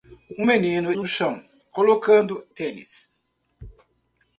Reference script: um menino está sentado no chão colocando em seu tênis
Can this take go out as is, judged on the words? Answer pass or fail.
fail